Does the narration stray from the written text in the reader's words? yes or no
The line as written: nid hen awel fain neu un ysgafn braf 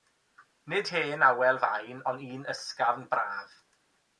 yes